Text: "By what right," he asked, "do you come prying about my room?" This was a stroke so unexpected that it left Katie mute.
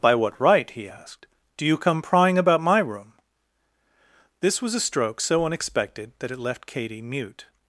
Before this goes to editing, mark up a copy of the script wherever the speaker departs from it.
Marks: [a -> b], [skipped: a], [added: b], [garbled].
"By what right," he asked, "do you come prying about my room?" This was a stroke so unexpected that it left Katie mute.